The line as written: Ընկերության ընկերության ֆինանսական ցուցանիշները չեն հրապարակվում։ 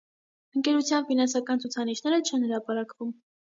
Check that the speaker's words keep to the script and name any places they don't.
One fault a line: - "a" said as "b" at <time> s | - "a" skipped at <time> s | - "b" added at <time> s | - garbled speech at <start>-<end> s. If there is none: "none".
- "ընկերության" skipped at 1.1 s